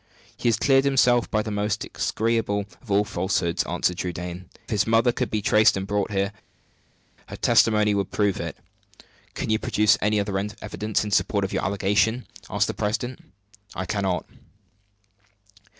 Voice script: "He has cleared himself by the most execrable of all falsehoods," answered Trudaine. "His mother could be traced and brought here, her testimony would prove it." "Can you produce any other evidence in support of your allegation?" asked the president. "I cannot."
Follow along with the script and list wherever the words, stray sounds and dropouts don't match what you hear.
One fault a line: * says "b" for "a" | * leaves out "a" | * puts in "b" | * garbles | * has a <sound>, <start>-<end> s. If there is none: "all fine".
all fine